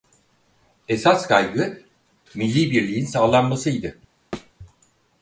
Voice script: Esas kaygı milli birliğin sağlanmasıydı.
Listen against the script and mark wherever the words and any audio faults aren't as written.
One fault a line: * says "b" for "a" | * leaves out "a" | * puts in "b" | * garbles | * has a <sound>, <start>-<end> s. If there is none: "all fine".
* has a thud, 4.3-4.5 s